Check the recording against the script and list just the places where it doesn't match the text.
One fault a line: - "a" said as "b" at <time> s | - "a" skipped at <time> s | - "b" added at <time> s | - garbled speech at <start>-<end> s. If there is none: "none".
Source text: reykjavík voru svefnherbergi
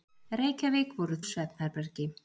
none